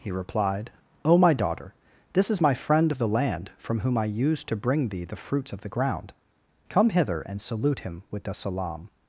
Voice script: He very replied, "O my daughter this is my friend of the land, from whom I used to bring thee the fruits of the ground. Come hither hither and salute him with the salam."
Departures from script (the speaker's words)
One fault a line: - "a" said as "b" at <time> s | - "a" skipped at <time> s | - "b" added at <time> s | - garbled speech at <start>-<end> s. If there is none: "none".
- "very" skipped at 0.1 s
- "hither" skipped at 7.2 s